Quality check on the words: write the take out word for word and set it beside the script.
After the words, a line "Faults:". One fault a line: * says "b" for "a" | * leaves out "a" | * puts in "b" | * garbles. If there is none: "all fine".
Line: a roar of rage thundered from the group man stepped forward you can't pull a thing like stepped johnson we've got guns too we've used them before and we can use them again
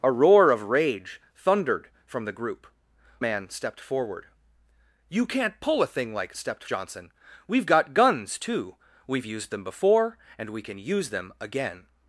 a roar of rage thundered from the group man stepped forward you can't pull a thing like stepped johnson we've got guns too we've used them before and we can use them again
Faults:
all fine